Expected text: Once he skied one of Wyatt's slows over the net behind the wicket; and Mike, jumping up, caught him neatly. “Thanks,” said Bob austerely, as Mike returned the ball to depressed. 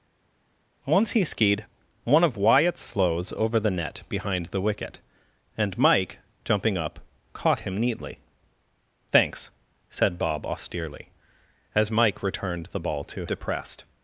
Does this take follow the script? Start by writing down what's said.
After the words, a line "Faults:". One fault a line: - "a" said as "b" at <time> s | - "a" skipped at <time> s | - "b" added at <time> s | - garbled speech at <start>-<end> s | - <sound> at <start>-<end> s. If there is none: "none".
Once he skied one of Wyatt's slows over the net behind the wicket; and Mike, jumping up, caught him neatly. “Thanks,” said Bob austerely, as Mike returned the ball to depressed.
Faults:
none